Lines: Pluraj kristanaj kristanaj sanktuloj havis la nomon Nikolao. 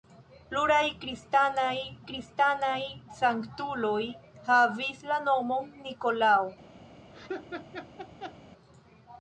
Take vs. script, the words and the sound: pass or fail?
fail